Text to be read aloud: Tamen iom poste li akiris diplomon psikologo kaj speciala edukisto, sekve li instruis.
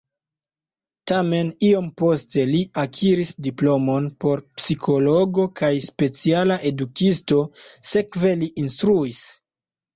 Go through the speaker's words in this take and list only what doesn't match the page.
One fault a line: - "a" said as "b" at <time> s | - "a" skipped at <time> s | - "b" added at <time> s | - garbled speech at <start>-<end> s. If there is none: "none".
- "por" added at 4.2 s